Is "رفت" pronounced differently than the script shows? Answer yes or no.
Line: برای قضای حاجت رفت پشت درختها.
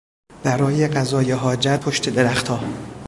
yes